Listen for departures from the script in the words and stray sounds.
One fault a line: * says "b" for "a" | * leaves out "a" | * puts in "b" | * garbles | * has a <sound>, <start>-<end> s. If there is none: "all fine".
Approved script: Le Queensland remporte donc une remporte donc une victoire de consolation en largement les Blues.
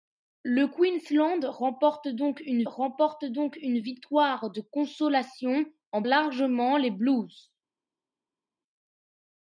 all fine